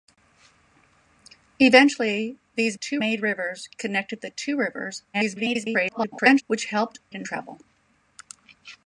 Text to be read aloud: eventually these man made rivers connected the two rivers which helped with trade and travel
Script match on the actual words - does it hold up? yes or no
no